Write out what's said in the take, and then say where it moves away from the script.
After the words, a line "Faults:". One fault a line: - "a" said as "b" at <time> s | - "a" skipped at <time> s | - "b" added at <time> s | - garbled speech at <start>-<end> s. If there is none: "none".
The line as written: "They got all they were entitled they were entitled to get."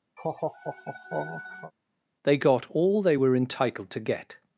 "They got all they were entitled to get."
Faults:
- "they were entitled" skipped at 3.9 s